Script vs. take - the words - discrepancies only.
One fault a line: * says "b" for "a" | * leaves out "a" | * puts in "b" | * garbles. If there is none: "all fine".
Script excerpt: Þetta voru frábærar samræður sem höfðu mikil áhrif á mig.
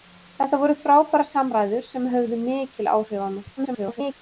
* garbles